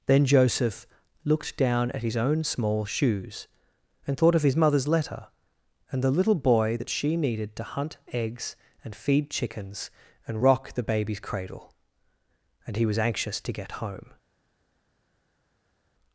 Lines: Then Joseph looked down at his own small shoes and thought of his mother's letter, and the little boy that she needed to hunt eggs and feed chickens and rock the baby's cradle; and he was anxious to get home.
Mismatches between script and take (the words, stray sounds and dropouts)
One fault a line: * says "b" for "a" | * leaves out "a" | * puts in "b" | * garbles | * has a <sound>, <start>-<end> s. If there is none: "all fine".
all fine